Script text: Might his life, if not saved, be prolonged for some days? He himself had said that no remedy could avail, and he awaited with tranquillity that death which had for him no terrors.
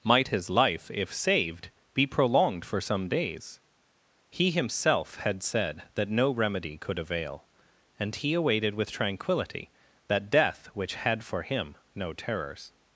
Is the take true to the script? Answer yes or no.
no